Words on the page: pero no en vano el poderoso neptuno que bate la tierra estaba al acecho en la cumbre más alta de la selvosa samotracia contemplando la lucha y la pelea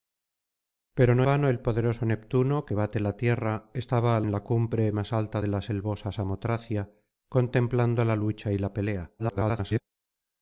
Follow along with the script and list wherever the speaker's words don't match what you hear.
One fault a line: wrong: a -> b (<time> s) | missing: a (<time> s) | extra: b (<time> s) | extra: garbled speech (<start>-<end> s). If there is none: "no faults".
missing: en (1.3 s)
missing: acecho (4.3 s)
extra: garbled speech (9.2-9.8 s)